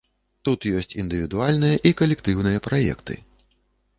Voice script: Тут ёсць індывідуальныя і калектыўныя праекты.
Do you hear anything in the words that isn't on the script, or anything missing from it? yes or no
no